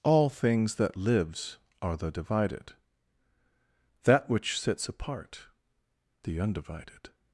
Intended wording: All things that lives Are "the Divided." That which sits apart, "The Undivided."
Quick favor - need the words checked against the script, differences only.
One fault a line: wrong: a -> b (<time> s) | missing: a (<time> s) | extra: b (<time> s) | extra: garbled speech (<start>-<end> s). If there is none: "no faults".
no faults